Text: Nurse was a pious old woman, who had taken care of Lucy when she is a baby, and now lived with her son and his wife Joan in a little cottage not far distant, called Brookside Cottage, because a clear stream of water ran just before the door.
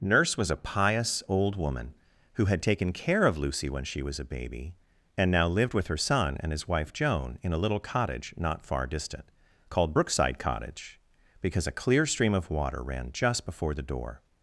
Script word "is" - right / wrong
wrong